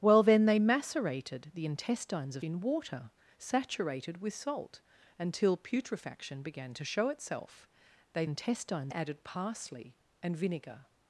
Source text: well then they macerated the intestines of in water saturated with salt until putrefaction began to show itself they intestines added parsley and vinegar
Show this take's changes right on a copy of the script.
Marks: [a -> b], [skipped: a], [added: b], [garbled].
well then they macerated the intestines of in water saturated with salt until putrefaction began to show itself they intestines added parsley and vinegar